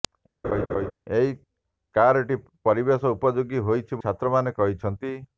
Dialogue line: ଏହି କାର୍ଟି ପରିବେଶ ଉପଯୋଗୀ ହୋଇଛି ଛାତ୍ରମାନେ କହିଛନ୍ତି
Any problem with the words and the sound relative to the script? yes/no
yes